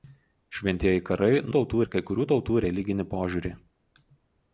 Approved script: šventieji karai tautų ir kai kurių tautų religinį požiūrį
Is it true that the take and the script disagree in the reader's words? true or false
false